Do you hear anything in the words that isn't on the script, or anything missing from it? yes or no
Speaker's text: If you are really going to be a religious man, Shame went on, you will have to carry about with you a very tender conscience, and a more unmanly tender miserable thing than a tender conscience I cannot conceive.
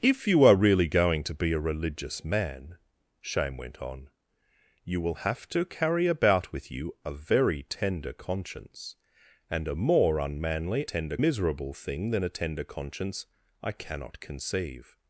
no